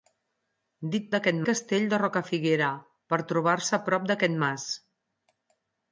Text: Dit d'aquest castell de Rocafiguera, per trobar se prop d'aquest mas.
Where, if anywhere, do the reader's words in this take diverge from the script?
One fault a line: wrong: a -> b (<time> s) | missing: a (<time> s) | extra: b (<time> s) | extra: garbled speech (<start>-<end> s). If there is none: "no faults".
no faults